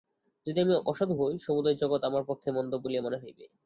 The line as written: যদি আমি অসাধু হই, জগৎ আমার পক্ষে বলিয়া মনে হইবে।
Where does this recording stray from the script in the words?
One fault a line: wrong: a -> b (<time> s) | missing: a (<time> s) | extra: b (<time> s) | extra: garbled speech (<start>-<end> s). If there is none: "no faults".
extra: সমুদয় (1.4 s)
extra: মন্দ (2.5 s)